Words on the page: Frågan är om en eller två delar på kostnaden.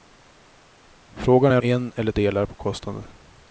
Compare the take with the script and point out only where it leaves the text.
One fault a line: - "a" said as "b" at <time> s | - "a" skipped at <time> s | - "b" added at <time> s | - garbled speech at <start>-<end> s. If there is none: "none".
- "om" skipped at 1.6 s
- "två" skipped at 2.1 s